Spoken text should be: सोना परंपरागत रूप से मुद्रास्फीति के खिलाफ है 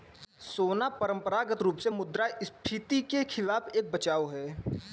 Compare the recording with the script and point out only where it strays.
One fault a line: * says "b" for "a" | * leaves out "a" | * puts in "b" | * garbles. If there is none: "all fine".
* puts in "एक बचाव"